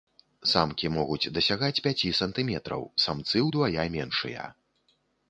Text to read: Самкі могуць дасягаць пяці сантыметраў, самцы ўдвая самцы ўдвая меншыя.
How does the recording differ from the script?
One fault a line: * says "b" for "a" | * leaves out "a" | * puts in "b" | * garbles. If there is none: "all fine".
* leaves out "самцы ўдвая"